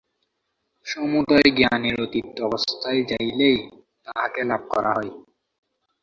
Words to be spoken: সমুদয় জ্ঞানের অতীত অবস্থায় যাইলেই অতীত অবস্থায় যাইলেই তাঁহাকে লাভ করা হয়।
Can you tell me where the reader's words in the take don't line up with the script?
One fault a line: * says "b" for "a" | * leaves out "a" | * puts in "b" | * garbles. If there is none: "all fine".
* leaves out "অতীত অবস্থায় যাইলেই"